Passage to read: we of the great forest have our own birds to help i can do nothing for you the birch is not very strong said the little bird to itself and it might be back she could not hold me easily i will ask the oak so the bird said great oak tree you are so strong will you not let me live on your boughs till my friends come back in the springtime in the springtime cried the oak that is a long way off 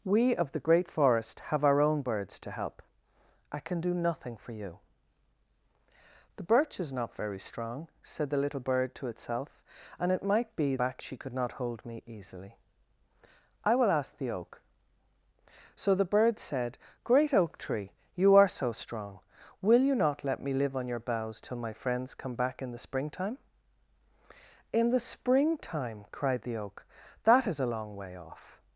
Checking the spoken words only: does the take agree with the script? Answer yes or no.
yes